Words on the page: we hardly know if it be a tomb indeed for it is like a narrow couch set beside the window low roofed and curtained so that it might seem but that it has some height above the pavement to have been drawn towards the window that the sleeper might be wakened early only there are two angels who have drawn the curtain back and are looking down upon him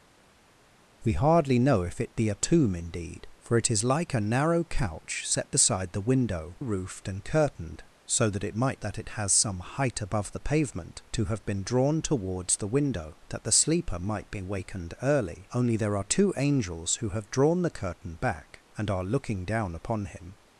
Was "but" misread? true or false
true